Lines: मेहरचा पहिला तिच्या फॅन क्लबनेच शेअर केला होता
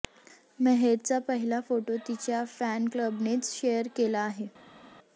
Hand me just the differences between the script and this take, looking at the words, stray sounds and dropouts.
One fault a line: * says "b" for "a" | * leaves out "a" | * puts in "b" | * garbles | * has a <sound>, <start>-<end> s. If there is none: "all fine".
* puts in "फोटो"
* says "आहे" for "होता"